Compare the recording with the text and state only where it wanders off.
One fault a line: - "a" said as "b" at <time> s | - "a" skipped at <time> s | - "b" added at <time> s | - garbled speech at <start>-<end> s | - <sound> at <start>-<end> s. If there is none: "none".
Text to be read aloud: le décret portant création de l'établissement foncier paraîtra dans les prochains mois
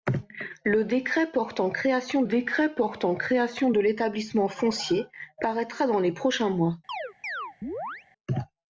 - "décret portant création" added at 2.2 s
- chirp at 6.9-8.1 s